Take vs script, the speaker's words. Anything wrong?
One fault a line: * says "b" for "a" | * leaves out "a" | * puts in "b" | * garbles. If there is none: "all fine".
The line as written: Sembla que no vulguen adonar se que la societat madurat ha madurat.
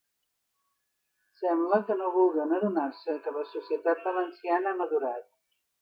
* says "valenciana" for "madurat"